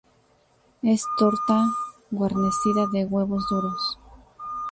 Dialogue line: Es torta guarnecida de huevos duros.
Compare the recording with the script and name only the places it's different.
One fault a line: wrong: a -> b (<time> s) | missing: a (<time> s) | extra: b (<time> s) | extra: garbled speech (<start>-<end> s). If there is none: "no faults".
no faults